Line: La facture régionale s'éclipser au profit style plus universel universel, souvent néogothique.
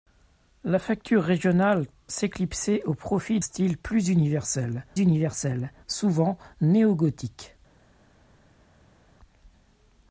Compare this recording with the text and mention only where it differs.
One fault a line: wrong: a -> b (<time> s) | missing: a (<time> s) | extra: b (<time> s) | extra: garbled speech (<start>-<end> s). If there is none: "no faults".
no faults